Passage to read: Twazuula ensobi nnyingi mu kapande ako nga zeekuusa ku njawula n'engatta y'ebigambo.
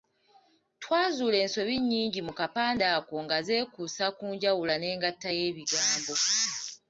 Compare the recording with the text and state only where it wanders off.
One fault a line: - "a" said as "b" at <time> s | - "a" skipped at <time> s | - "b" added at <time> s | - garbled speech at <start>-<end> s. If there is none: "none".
none